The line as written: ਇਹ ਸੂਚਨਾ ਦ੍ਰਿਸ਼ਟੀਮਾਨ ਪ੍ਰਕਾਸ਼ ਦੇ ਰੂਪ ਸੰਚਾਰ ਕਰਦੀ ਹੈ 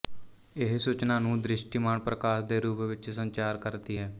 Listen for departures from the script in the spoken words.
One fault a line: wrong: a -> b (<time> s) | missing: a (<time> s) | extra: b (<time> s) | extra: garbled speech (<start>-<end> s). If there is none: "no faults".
extra: ਨੂੰ (1.2 s)
extra: ਵਿੱਚ (2.8 s)